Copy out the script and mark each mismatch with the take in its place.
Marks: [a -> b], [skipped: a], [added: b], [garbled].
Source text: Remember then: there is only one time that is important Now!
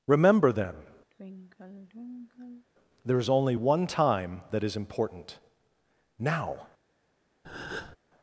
Remember then: there is only one time that is important Now!